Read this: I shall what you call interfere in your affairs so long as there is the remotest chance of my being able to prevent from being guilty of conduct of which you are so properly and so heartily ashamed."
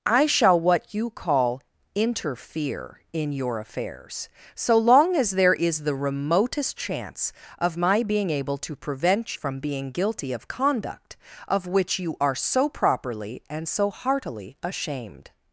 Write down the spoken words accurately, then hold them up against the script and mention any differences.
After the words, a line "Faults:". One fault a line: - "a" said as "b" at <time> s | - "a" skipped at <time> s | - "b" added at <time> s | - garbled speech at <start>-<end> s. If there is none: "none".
I shall what you call interfere in your affairs so long as there is the remotest chance of my being able to prevent from being guilty of conduct of which you are so properly and so heartily ashamed."
Faults:
none